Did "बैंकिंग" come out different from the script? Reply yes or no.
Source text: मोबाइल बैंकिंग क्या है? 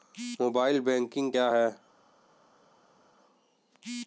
no